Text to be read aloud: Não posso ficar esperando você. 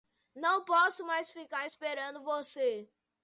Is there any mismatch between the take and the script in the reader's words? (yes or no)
yes